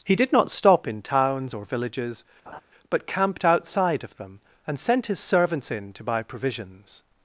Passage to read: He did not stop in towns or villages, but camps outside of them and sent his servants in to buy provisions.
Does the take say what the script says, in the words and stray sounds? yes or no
no